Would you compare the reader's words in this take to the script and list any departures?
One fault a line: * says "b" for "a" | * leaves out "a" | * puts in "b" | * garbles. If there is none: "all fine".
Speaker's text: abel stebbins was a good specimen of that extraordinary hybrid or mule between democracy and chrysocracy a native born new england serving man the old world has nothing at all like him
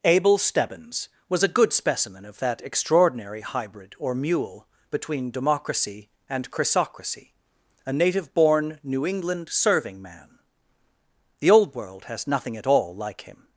all fine